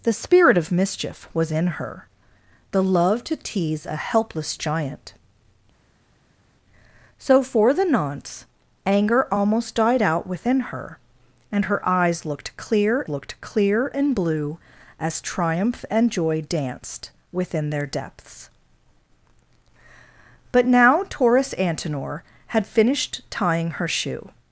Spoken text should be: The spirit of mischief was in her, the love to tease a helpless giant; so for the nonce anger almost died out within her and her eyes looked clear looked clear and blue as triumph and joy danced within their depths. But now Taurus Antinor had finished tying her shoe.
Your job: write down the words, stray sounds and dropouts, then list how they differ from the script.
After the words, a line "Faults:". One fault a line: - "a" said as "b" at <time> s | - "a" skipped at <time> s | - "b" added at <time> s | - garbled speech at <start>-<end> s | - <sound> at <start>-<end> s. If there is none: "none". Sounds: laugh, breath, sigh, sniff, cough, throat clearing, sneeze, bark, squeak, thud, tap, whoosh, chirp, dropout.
The spirit of mischief was in her, the love to tease a helpless giant; so for the nonce anger almost died out within her and her eyes looked clear looked clear and blue as triumph and joy danced within their depths. But now Taurus Antinor had finished tying her shoe.
Faults:
none